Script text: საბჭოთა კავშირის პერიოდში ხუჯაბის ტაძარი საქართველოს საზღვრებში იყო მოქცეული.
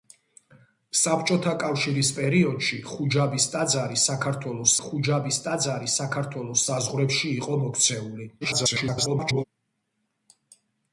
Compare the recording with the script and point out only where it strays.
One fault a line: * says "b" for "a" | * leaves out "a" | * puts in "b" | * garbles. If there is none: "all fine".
* puts in "ხუჯაბის ტაძარი საქართველოს"
* garbles